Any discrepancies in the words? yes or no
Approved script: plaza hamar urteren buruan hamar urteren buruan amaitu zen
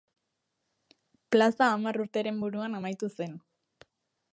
yes